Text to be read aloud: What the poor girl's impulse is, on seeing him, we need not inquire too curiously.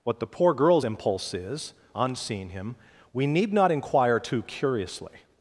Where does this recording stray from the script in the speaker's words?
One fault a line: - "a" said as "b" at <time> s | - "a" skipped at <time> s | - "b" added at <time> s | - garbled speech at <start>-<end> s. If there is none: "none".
none